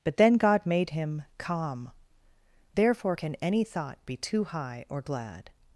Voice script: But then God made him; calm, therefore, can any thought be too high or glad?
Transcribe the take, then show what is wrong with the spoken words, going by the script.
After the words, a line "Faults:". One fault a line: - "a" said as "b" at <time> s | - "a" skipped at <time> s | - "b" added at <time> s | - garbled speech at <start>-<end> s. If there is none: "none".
But then God made him; calm, therefore, can any thought be too high or glad?
Faults:
none